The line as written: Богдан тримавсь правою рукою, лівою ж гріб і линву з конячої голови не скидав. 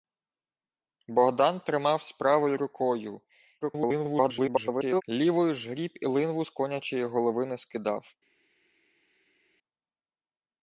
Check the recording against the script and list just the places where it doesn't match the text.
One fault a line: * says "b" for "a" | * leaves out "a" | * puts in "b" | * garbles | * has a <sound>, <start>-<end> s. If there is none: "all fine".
* garbles